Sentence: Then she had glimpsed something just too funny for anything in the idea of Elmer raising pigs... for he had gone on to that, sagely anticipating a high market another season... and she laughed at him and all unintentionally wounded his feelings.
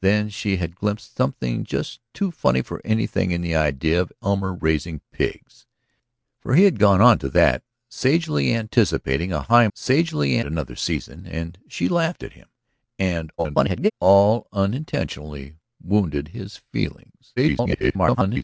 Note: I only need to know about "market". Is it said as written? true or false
false